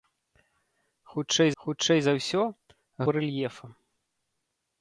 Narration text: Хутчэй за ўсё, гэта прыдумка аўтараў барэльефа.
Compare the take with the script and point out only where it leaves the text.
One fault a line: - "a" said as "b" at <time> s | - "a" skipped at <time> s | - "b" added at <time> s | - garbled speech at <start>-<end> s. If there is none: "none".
- "хутчэй" added at 1.6 s
- "гэта прыдумка аўтараў" skipped at 2.4 s